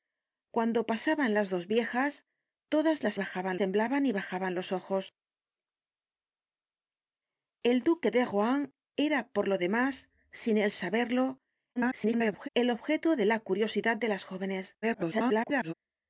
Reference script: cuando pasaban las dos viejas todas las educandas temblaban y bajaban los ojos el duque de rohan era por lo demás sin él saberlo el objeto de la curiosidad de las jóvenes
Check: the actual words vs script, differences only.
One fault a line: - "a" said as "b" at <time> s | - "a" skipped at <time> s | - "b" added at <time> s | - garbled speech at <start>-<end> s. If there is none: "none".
- "educandas" said as "bajaban" at 3.1 s
- garbled speech at 11.8-12.5 s
- garbled speech at 14.8-15.7 s